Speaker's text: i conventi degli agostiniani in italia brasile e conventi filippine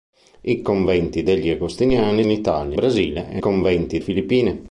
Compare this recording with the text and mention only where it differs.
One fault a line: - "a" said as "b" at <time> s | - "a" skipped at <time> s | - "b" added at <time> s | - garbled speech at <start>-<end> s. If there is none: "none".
none